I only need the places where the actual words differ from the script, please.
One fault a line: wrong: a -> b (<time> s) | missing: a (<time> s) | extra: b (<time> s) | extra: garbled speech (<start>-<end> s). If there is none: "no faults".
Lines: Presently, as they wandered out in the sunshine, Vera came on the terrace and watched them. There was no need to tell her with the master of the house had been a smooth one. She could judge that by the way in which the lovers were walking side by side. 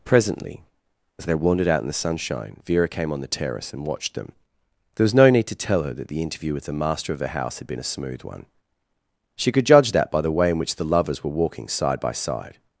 extra: that the interview (5.9 s)